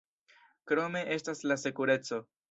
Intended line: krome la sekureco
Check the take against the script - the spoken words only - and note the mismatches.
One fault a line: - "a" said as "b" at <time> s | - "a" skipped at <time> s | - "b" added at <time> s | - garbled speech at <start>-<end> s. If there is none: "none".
- "estas" added at 1.1 s